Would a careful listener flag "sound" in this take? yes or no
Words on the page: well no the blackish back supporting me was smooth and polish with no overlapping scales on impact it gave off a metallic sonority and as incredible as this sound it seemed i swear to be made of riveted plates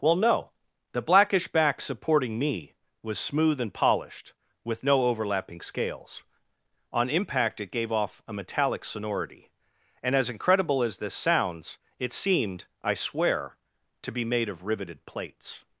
yes